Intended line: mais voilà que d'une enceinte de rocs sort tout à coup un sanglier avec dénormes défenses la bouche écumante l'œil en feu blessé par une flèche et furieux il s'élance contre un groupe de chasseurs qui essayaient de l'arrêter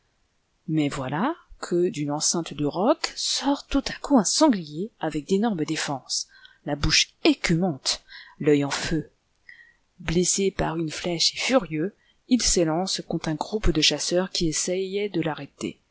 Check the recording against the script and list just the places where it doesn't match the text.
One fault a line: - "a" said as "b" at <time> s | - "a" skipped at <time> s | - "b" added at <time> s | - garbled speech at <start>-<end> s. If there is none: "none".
none